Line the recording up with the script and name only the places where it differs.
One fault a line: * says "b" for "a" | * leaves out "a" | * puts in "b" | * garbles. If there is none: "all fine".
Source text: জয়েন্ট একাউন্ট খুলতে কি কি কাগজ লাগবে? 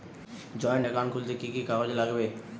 all fine